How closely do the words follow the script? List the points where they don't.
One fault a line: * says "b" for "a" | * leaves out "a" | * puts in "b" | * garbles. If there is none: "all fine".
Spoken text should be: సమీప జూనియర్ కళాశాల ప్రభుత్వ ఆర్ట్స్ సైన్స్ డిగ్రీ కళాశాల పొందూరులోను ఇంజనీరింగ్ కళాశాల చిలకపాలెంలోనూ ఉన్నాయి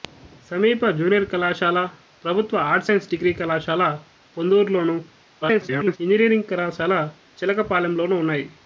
* garbles